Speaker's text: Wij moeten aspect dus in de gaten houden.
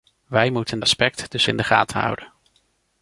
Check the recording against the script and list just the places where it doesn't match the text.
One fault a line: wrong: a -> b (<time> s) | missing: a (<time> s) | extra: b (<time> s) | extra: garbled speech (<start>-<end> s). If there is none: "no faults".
no faults